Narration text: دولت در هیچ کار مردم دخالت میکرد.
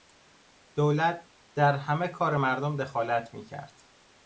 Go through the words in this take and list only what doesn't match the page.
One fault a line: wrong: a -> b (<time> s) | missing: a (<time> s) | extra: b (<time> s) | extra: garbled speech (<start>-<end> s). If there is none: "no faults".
wrong: هیچ -> همه (1.8 s)